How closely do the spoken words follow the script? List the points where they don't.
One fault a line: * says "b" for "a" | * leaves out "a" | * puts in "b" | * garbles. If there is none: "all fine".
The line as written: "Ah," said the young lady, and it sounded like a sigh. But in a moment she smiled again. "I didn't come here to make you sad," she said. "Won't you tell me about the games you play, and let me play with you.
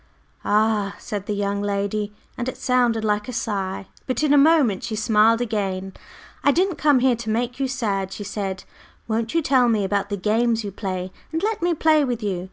all fine